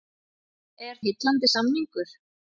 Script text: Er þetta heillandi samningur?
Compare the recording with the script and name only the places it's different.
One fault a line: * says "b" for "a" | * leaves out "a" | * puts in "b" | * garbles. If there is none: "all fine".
* leaves out "þetta"